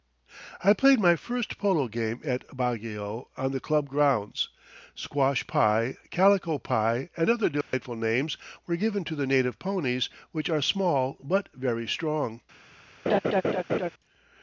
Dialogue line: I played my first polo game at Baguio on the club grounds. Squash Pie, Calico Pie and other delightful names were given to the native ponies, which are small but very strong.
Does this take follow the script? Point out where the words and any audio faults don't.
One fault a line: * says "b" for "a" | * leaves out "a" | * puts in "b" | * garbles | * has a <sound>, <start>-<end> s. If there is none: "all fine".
* has a dropout, 7.6-7.7 s
* has a laugh, 13.1-13.9 s